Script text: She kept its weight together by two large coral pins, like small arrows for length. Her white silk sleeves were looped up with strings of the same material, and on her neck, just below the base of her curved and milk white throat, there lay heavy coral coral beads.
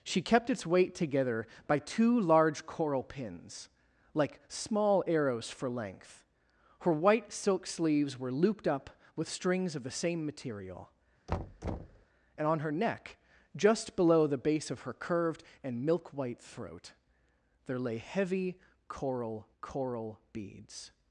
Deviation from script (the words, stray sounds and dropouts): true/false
true